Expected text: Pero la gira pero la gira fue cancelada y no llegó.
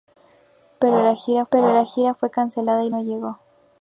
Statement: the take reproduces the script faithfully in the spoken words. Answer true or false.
true